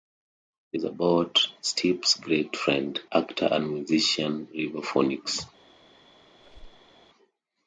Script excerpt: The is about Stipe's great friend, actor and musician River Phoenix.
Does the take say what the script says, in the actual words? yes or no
yes